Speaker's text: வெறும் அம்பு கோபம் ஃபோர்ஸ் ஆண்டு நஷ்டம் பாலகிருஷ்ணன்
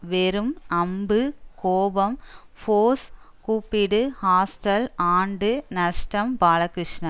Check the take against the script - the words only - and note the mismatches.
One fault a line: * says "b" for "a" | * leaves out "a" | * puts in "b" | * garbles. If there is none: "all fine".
* puts in "கூப்பிடு ஹாஸ்டல்"